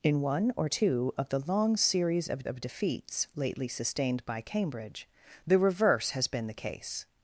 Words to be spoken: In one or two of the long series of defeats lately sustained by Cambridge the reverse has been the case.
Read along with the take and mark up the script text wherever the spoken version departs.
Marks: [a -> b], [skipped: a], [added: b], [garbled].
In one or two of the long series of [added: of] defeats lately sustained by Cambridge the reverse has been the case.